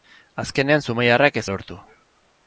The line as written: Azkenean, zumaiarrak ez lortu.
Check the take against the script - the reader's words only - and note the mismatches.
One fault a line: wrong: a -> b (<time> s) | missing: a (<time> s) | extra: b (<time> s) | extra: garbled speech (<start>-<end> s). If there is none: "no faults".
no faults